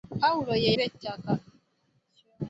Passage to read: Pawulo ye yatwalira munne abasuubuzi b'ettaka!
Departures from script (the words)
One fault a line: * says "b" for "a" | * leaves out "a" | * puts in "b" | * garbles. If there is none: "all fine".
* leaves out "yatwalira munne abasuubuzi"